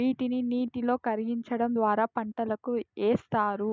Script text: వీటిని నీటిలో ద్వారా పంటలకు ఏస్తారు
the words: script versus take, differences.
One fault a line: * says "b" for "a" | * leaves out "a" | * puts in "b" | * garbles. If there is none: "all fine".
* puts in "కరిగించడం"